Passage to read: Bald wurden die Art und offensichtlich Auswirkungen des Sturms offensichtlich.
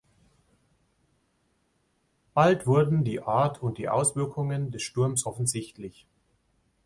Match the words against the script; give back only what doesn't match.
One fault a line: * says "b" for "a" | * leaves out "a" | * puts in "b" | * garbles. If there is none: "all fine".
* says "die" for "offensichtlich"